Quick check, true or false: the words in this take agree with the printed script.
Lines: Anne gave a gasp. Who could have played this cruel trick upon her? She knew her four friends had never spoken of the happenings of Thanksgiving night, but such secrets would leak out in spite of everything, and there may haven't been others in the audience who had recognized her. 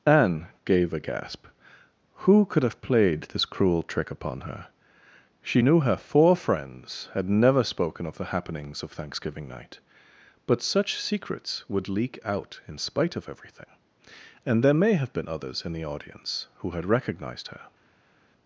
false